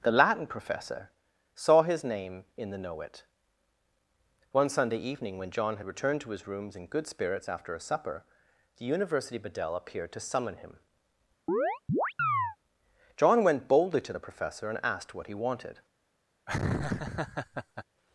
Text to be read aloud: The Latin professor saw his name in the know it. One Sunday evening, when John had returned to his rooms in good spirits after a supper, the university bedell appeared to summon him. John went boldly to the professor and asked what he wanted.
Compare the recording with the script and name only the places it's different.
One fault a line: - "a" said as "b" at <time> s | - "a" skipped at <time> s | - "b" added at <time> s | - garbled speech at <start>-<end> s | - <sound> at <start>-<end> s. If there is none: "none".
- chirp at 11.5-12.6 s
- laugh at 16.5-17.8 s